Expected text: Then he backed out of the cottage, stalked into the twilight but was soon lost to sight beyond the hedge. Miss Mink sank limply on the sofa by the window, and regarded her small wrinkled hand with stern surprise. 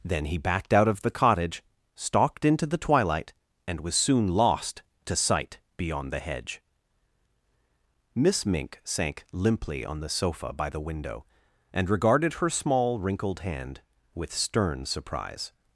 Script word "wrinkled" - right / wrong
right